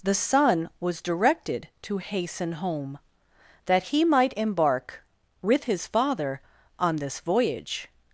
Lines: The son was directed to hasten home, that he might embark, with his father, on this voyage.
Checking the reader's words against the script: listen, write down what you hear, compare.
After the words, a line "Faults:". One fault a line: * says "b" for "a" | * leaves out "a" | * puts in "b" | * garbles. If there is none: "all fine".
The son was directed to hasten home, that he might embark, with his father, on this voyage.
Faults:
all fine